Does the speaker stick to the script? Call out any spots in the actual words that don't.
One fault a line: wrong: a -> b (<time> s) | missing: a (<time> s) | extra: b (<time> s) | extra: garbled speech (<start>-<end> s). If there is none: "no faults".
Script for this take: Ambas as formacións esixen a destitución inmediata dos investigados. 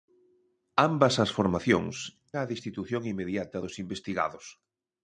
missing: esixen (1.9 s)